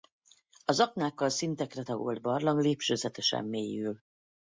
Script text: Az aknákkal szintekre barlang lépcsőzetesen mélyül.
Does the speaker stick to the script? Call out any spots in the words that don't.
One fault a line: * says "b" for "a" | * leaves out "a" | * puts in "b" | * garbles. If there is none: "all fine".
* puts in "tagolt"